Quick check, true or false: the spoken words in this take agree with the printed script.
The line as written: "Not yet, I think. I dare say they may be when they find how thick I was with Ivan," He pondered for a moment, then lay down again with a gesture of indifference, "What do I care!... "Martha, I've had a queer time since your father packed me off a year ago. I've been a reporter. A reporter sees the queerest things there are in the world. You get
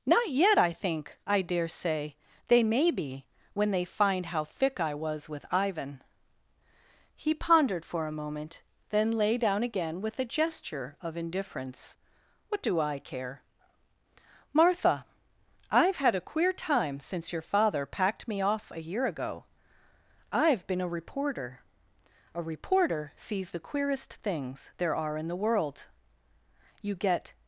true